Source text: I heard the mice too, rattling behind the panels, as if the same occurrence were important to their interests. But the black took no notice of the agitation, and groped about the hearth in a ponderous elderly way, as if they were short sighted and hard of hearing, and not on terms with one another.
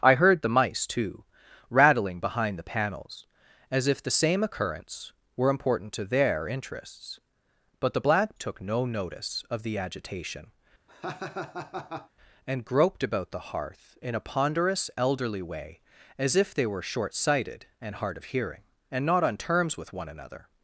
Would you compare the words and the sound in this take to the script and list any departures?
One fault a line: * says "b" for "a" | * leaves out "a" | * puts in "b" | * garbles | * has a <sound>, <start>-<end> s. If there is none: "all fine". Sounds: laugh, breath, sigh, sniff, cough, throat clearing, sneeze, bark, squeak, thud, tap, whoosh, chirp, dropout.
* has a laugh, 10.9-12.1 s